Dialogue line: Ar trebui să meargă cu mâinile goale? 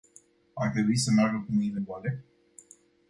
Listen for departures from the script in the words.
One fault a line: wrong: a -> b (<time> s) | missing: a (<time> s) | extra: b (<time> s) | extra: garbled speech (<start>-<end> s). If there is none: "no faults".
no faults